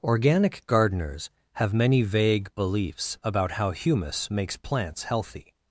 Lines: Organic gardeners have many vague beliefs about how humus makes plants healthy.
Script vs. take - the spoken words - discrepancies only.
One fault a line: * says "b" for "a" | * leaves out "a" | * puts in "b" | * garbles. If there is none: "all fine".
all fine